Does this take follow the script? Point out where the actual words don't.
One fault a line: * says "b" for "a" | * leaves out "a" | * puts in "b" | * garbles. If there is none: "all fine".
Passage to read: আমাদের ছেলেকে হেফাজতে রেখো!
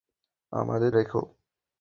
* leaves out "ছেলেকে হেফাজতে"